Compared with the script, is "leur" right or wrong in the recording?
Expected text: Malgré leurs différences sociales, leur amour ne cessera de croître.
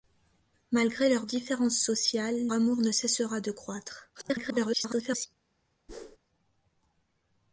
wrong